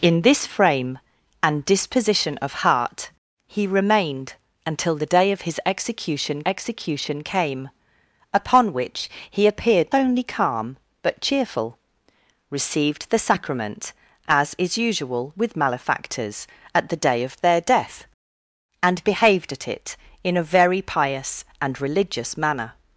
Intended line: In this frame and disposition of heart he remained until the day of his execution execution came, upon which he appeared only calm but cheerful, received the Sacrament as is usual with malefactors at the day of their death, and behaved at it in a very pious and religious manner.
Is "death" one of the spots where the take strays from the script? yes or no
no